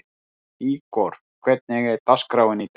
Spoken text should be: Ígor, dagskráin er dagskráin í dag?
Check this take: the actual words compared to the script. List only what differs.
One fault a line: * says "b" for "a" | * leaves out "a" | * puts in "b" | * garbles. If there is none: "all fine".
* says "hvernig" for "dagskráin"